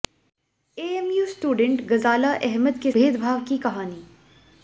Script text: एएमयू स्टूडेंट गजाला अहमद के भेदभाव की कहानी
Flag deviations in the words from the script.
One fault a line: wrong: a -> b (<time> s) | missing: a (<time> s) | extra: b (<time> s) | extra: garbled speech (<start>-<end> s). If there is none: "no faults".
no faults